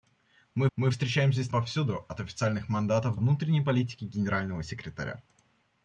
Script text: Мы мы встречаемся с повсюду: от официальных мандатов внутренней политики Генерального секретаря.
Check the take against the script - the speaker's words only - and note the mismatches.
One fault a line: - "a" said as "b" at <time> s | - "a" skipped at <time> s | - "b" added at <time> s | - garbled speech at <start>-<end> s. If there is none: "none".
none